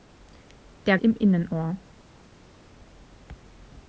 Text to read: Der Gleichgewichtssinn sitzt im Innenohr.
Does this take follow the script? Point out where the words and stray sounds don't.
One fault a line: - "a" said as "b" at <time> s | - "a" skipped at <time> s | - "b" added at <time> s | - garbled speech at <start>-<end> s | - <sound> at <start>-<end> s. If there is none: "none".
- "Gleichgewichtssinn sitzt" skipped at 1.0 s